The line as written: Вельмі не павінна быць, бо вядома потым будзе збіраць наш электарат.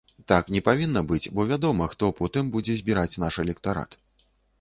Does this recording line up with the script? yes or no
no